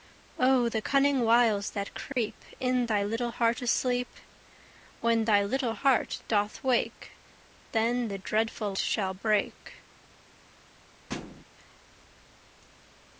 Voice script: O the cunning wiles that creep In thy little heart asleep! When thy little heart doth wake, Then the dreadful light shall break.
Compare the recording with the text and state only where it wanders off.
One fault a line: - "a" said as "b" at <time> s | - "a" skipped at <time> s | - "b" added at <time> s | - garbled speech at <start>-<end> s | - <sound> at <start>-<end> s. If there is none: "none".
- dropout at 2.1-2.2 s
- "light" skipped at 8.7 s
- thud at 11.1-11.4 s